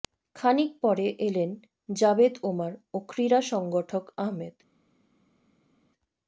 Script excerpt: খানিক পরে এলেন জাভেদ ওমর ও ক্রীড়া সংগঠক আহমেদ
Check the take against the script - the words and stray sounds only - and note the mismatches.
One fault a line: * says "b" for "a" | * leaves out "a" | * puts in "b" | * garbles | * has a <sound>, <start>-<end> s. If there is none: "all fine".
all fine